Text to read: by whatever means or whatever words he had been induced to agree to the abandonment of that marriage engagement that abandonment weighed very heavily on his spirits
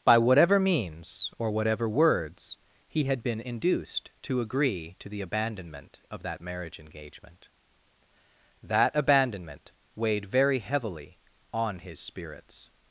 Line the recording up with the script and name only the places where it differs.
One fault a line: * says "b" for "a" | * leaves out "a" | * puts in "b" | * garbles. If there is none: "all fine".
all fine